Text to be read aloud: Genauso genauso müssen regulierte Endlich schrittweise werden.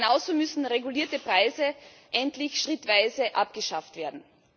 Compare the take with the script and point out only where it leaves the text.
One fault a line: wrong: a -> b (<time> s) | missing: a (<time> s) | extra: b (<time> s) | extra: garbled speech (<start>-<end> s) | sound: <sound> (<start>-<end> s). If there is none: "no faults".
missing: genauso (0.3 s)
extra: Preise (1.2 s)
extra: abgeschafft (3.4 s)